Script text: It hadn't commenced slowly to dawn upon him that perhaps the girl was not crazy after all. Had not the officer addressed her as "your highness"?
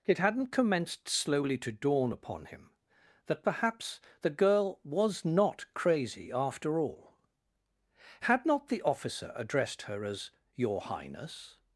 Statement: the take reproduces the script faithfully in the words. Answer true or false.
true